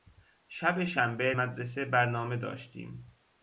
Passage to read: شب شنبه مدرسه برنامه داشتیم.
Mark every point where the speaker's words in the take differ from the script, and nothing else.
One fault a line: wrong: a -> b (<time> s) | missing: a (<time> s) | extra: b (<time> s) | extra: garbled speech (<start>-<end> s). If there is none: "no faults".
no faults